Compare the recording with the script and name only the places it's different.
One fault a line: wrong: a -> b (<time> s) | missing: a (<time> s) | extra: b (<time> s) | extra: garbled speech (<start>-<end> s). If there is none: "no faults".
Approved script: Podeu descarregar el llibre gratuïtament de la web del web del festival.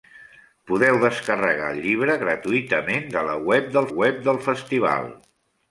no faults